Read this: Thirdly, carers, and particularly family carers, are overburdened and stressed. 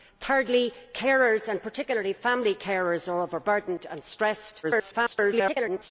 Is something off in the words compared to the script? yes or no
yes